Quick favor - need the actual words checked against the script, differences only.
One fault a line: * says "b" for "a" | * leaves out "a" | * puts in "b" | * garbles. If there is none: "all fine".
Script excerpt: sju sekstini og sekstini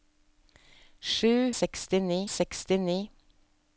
all fine